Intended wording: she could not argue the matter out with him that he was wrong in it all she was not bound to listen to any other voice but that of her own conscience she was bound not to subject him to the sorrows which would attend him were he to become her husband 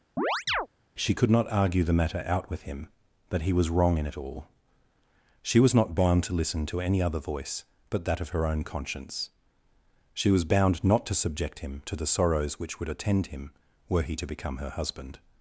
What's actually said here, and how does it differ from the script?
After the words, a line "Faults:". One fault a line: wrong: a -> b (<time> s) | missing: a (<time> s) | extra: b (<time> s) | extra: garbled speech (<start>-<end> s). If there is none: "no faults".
she could not argue the matter out with him that he was wrong in it all she was not bound to listen to any other voice but that of her own conscience she was bound not to subject him to the sorrows which would attend him were he to become her husband
Faults:
no faults